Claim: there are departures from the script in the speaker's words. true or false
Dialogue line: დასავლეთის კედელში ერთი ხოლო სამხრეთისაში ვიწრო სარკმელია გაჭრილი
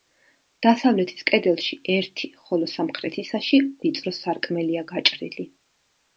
false